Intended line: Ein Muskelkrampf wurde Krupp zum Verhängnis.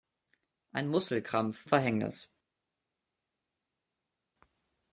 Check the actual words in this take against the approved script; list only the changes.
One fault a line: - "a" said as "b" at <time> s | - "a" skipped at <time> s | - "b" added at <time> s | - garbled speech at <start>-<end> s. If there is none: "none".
- "wurde Krupp zum" skipped at 1.7 s